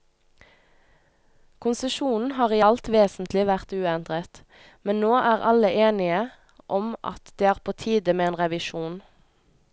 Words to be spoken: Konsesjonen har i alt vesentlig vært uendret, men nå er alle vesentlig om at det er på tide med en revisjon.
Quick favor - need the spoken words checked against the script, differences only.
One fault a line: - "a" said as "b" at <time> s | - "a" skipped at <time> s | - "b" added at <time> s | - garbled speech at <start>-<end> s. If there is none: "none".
- "vesentlig" said as "enige" at 5.9 s